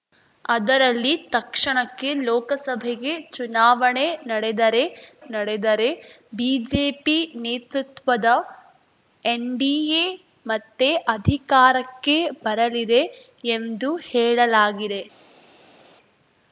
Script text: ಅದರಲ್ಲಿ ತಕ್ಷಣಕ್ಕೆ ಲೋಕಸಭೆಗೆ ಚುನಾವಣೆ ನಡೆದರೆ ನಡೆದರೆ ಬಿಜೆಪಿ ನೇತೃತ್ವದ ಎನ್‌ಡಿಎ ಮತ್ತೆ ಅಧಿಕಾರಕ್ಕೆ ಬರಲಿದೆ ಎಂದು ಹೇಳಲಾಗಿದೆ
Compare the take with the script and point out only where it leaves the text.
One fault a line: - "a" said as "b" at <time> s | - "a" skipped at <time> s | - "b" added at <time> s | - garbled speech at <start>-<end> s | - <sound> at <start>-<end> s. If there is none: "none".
none